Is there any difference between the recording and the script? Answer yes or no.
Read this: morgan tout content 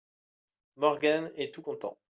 yes